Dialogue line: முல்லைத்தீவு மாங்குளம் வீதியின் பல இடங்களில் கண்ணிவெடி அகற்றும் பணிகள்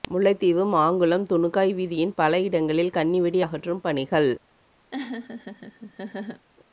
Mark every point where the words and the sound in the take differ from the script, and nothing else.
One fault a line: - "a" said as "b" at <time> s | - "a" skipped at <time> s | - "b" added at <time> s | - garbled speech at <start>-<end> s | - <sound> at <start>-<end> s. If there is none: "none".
- "துணுக்காய்" added at 1.3 s
- laugh at 4.9-6.5 s